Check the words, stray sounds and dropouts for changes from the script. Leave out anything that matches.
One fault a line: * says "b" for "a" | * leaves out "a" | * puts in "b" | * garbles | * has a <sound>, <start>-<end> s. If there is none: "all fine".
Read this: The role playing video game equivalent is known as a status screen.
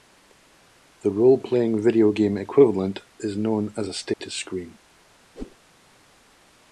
* has a dropout, 4.1-4.2 s
* has a whoosh, 5.4-5.6 s